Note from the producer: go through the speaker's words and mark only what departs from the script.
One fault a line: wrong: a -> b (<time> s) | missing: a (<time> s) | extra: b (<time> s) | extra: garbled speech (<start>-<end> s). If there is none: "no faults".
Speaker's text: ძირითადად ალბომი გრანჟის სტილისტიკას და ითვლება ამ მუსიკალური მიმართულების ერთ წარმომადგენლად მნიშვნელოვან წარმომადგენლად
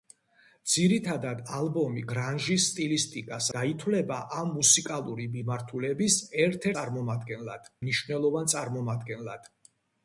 no faults